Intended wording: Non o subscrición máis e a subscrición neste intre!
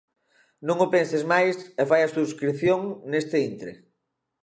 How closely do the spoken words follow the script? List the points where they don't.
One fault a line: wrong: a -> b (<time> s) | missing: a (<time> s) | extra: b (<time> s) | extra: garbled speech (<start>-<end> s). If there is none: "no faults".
wrong: subscrición -> penses (0.9 s)
extra: fai (1.9 s)